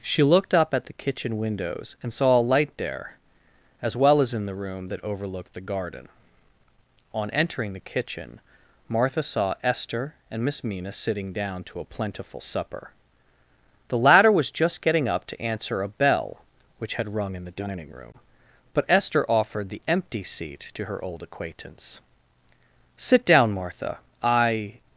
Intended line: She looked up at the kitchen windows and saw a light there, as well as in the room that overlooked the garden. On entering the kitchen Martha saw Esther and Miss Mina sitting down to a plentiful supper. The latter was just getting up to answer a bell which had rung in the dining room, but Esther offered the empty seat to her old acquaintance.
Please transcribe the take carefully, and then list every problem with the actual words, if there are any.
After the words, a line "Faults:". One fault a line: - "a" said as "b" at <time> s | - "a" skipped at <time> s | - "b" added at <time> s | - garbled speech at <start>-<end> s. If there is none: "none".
She looked up at the kitchen windows and saw a light there, as well as in the room that overlooked the garden. On entering the kitchen Martha saw Esther and Miss Mina sitting down to a plentiful supper. The latter was just getting up to answer a bell which had rung in the dining room, but Esther offered the empty seat to her old acquaintance. "Sit down, Martha. I
Faults:
- "Sit down Martha I" added at 23.0 s